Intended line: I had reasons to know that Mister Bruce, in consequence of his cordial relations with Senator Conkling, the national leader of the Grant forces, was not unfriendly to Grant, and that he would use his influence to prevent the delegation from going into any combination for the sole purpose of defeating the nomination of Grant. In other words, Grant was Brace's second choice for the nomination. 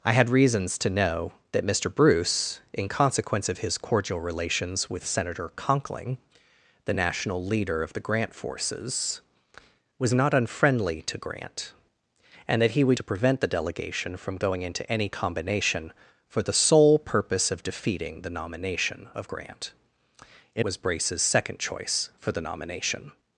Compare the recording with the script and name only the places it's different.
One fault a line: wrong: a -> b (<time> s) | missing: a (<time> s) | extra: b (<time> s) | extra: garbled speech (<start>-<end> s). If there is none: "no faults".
missing: use his influence (13.0 s)
missing: other words Grant (20.6 s)